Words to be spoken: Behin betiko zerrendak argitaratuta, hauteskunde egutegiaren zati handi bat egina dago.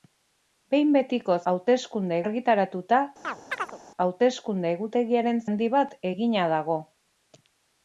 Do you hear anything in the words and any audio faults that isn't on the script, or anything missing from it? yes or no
yes